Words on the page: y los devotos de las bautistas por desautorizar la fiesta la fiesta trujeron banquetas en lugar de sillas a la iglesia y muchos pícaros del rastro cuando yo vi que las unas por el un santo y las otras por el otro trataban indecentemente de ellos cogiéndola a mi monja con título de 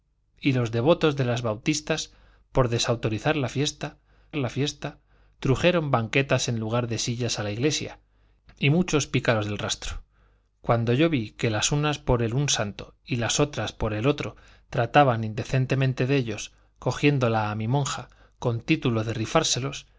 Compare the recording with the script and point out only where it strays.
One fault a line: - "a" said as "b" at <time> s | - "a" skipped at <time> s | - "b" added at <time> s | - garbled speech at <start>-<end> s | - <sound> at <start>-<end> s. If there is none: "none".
none